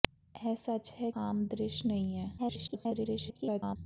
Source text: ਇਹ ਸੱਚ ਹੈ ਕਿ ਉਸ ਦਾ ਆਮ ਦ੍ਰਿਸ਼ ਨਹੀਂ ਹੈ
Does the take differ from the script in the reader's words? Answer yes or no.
yes